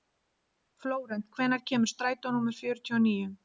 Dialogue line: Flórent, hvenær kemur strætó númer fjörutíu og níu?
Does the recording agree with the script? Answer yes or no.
yes